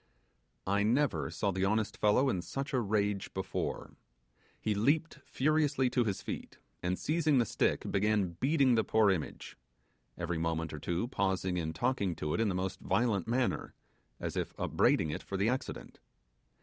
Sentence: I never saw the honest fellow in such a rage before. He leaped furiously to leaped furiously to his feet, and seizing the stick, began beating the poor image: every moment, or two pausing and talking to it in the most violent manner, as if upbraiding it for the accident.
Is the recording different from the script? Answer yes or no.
yes